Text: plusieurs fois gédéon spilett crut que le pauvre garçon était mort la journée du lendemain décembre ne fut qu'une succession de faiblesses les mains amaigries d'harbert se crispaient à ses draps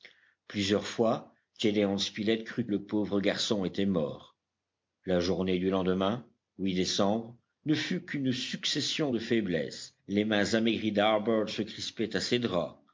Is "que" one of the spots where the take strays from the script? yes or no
yes